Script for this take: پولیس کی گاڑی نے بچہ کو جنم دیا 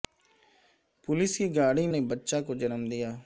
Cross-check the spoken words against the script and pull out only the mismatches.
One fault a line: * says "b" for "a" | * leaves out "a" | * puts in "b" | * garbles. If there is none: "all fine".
all fine